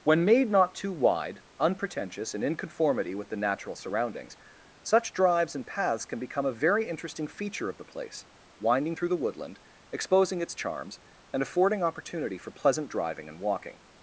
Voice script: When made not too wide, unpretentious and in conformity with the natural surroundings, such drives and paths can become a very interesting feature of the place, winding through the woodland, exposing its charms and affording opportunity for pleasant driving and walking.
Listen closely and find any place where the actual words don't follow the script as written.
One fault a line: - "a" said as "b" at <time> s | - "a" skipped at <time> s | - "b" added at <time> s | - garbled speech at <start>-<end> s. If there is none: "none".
none